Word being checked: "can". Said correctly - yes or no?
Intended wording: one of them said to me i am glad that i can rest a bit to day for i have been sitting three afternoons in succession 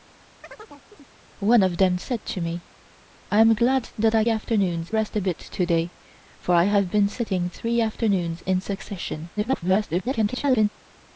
no